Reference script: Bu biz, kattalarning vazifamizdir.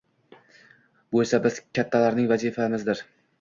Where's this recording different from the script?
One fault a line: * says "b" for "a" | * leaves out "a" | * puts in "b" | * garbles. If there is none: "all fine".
* puts in "esa"